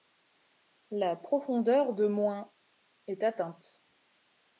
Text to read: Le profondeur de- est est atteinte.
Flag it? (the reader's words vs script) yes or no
yes